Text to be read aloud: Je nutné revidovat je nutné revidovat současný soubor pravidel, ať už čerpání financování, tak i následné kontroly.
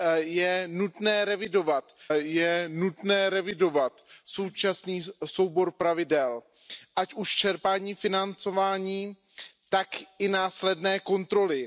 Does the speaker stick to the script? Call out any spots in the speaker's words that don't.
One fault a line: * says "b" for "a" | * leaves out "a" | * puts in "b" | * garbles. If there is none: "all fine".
all fine